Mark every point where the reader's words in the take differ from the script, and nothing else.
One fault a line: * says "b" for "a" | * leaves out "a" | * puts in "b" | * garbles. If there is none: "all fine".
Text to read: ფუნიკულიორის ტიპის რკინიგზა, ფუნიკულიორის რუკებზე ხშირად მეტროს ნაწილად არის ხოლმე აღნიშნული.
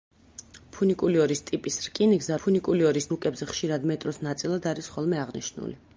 all fine